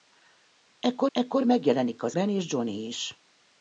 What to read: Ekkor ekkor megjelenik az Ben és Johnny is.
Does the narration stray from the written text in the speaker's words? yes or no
no